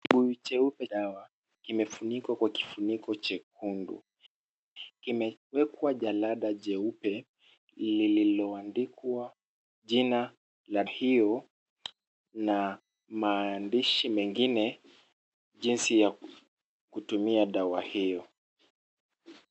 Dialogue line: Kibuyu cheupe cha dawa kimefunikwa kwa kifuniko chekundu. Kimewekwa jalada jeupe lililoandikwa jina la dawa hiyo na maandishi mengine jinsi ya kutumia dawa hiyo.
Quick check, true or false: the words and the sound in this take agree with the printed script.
false